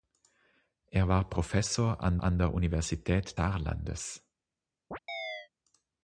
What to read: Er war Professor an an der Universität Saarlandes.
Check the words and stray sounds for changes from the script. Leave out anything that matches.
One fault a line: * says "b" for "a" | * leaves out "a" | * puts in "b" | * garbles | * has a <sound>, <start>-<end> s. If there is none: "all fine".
* has a chirp, 4.9-5.5 s